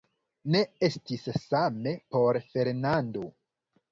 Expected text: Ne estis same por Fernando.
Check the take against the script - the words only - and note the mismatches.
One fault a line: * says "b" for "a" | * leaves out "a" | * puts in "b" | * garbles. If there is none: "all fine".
all fine